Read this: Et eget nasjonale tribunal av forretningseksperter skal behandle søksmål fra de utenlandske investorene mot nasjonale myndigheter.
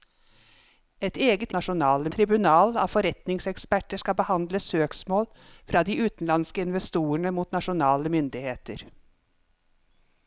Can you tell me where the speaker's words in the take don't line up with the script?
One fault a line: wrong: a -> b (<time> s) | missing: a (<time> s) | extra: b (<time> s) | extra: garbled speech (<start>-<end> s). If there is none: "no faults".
no faults